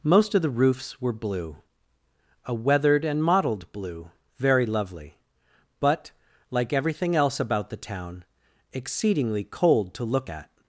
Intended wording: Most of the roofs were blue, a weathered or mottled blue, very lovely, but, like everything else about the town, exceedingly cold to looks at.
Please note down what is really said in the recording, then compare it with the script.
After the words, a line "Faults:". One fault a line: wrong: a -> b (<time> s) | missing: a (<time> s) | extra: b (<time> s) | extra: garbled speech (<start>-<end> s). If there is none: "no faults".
Most of the roofs were blue, a weathered and mottled blue, very lovely, but, like everything else about the town, exceedingly cold to look at.
Faults:
wrong: or -> and (3.0 s)
wrong: looks -> look (10.0 s)